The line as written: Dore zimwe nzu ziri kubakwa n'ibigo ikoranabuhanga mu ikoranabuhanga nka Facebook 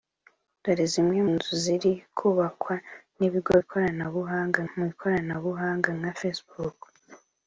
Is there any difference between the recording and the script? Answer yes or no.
no